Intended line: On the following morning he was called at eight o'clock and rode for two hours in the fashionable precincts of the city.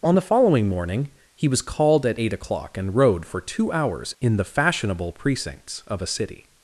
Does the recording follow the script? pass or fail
fail